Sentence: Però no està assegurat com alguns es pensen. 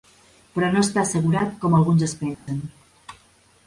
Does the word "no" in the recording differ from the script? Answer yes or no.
no